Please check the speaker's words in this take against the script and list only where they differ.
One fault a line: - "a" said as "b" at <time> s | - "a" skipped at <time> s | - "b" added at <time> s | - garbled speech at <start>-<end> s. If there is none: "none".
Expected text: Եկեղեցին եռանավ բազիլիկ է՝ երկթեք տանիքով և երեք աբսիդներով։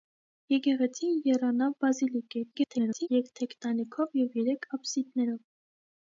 - garbled speech at 2.5-3.1 s